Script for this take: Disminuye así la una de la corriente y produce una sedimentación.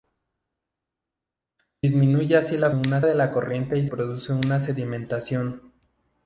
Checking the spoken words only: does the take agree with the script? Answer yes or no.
yes